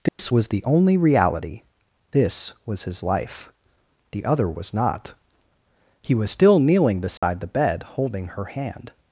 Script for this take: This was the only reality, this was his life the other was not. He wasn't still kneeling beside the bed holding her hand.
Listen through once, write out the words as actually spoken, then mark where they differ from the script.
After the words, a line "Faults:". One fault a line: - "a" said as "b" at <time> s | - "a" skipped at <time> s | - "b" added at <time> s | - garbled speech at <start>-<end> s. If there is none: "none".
This was the only reality, this was his life the other was not. He was still kneeling beside the bed holding her hand.
Faults:
- "wasn't" said as "was" at 6.1 s